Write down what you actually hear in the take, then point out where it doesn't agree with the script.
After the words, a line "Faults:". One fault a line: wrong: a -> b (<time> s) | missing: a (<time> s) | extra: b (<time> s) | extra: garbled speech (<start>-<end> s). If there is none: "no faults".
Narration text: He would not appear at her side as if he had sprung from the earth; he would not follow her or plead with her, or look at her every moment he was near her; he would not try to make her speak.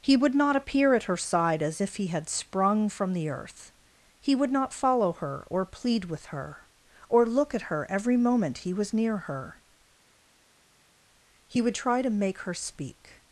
He would not appear at her side as if he had sprung from the earth; he would not follow her or plead with her, or look at her every moment he was near her; he would try to make her speak.
Faults:
missing: not (11.8 s)